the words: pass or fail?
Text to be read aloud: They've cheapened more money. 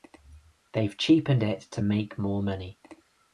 fail